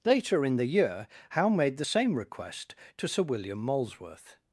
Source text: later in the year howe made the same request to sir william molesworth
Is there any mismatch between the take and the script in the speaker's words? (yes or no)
no